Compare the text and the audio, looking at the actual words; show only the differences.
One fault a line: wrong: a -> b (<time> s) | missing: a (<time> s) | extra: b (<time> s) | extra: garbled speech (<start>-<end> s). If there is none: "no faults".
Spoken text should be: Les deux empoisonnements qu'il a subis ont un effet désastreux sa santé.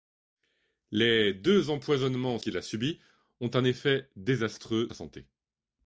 no faults